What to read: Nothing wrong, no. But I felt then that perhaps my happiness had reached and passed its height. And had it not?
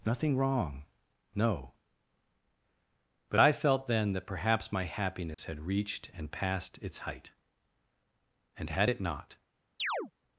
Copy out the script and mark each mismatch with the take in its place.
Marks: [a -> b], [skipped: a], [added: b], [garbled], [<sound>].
Nothing wrong, no. But I felt then that perhaps my happiness [dropout] had reached and passed its height. And had it not? [chirp]